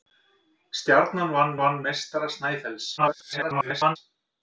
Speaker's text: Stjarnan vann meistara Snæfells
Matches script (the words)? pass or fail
fail